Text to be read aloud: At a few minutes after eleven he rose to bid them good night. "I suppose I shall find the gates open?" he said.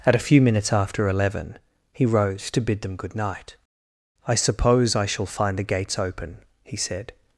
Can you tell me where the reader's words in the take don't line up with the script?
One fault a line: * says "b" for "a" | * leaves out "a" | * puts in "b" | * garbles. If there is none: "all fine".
all fine